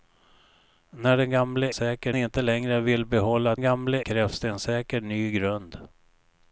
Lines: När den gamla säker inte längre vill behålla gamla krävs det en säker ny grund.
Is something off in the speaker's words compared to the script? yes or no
no